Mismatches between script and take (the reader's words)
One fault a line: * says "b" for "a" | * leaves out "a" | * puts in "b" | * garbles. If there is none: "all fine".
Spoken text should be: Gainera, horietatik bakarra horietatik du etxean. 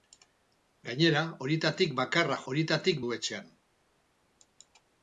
all fine